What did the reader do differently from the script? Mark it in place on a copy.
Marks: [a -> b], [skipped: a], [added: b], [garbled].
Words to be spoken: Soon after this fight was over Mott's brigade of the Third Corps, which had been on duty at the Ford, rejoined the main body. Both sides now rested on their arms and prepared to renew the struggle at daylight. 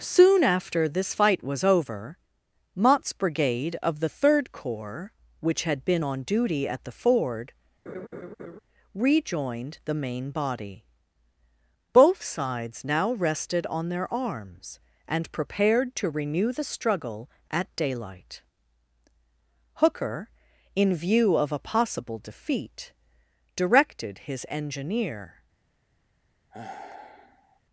Soon after this fight was over Mott's brigade of the Third Corps, which had been on duty at the Ford, rejoined the main body. Both sides now rested on their arms and prepared to renew the struggle at daylight. [added: Hooker in view of a possible defeat directed his engineer]